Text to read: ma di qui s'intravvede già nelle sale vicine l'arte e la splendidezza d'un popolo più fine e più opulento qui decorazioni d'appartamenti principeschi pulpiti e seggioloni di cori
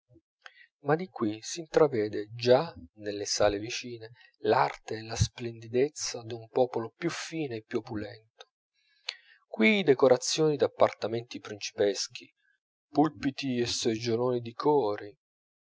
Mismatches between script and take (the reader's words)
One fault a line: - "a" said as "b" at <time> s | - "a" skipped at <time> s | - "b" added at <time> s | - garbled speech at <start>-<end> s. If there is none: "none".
none